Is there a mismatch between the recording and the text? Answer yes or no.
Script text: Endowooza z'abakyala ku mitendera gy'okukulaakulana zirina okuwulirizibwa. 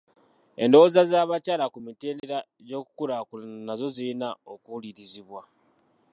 yes